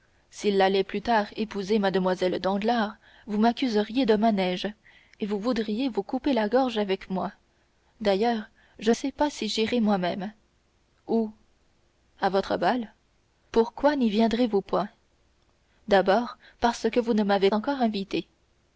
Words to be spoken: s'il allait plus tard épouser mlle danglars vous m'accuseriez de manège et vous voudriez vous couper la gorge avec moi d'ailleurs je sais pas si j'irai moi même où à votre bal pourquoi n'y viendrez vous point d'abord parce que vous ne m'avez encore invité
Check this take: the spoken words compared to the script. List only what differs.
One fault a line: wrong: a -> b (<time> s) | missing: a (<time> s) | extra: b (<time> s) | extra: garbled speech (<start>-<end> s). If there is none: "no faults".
no faults